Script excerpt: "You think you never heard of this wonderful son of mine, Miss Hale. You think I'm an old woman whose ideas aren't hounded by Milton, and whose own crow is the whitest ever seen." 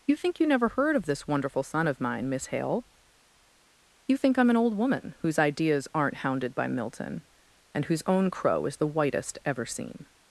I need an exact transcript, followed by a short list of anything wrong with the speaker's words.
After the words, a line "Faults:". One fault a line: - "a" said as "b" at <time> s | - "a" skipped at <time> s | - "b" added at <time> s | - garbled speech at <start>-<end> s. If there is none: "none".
"You think you never heard of this wonderful son of mine, Miss Hale. You think I'm an old woman whose ideas aren't hounded by Milton, and whose own crow is the whitest ever seen."
Faults:
none